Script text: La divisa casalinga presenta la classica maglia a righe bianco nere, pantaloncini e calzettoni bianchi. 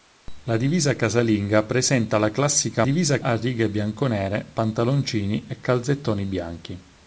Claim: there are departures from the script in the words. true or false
true